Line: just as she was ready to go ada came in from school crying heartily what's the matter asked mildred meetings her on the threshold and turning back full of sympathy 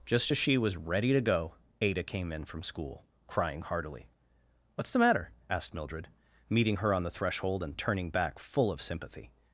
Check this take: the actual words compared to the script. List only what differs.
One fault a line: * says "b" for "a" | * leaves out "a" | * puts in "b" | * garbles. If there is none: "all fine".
* says "meeting" for "meetings"